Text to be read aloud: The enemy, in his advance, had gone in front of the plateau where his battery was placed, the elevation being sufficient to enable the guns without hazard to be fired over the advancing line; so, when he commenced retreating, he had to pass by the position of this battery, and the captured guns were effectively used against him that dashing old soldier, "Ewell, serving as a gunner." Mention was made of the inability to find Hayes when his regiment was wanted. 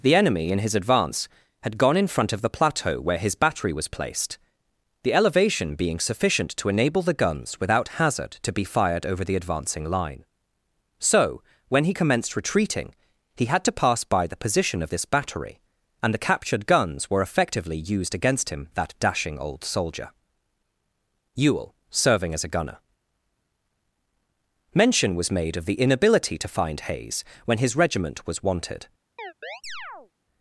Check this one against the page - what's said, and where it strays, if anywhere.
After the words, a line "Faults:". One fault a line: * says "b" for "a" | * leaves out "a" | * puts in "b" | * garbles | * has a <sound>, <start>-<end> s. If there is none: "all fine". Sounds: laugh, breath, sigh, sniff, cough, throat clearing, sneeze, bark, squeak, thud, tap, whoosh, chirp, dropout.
The enemy, in his advance, had gone in front of the plateau where his battery was placed, the elevation being sufficient to enable the guns without hazard to be fired over the advancing line; so, when he commenced retreating, he had to pass by the position of this battery, and the captured guns were effectively used against him that dashing old soldier, "Ewell, serving as a gunner." Mention was made of the inability to find Hayes when his regiment was wanted.
Faults:
* has a chirp, 29.2-30.1 s